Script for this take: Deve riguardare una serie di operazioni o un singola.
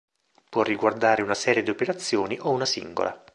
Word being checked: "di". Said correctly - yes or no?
yes